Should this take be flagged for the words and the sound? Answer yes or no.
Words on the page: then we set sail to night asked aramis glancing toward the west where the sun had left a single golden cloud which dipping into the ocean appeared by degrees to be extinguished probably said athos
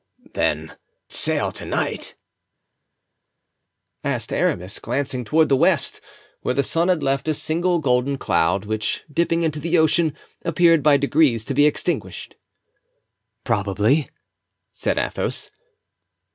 yes